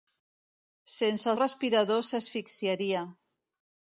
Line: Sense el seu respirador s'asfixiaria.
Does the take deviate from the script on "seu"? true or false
true